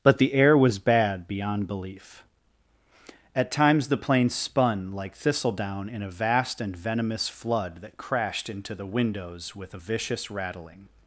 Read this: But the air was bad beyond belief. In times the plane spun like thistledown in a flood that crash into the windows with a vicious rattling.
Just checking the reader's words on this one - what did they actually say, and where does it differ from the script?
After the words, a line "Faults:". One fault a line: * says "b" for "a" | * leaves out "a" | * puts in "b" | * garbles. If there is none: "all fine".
But the air was bad beyond belief. At times the plane spun like thistledown in a vast and venomous flood that crashed into the windows with a vicious rattling.
Faults:
* says "At" for "In"
* puts in "vast and venomous"
* says "crashed" for "crash"